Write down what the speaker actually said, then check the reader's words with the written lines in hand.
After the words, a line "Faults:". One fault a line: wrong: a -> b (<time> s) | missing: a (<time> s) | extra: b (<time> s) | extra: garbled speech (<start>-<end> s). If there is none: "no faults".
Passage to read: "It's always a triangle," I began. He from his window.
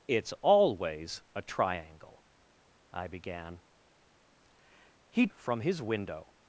"It's always a triangle," I began. He from his window.
Faults:
no faults